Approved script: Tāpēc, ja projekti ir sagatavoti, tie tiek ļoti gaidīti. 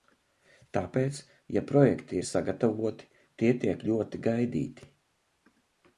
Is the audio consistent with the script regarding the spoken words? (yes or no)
yes